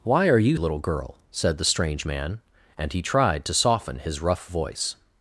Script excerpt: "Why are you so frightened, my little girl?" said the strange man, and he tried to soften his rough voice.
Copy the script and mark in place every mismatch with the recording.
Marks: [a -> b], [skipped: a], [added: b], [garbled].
"Why are you [skipped: so frightened, my] little girl?" said the strange man, and he tried to soften his rough voice.